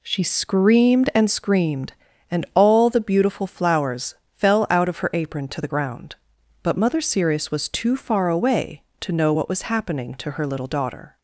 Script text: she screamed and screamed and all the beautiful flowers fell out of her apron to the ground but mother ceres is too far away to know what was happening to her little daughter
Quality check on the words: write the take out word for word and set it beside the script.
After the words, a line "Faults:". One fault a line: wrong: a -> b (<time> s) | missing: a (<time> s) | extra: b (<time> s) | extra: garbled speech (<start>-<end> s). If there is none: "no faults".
she screamed and screamed and all the beautiful flowers fell out of her apron to the ground but mother ceres was too far away to know what was happening to her little daughter
Faults:
wrong: is -> was (7.5 s)